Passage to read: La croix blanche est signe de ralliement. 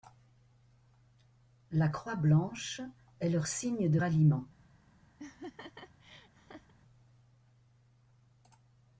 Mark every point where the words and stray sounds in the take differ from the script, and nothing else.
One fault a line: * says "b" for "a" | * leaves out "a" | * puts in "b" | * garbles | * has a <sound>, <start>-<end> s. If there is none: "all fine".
* puts in "leur"
* has a laugh, 5.2-6.7 s